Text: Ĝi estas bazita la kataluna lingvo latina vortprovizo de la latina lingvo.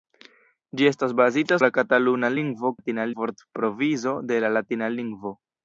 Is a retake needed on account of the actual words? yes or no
no